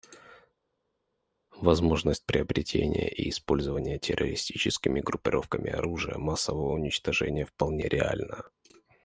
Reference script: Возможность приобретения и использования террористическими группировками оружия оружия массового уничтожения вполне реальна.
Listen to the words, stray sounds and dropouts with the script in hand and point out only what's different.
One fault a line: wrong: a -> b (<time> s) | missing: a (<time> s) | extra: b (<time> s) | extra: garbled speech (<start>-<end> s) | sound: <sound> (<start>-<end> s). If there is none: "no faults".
missing: оружия (6.2 s)